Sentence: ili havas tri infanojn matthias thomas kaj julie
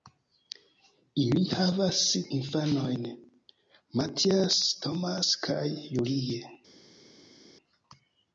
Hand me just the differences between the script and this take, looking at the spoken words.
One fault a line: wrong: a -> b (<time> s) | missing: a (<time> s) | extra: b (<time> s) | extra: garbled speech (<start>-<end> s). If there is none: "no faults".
missing: tri (2.0 s)